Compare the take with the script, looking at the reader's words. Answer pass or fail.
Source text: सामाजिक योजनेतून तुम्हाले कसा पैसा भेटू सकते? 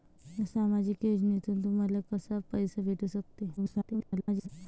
fail